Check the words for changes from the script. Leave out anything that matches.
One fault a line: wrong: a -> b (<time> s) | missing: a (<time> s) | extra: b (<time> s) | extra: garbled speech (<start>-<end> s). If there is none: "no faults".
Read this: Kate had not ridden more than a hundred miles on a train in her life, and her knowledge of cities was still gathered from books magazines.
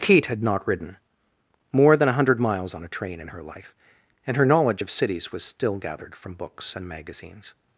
extra: and (6.7 s)